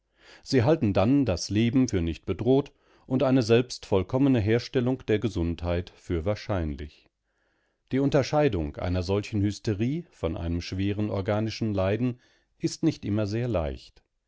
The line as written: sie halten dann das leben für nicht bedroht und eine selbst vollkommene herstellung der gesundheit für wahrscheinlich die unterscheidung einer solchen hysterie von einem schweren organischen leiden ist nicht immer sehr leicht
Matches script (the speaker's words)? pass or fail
pass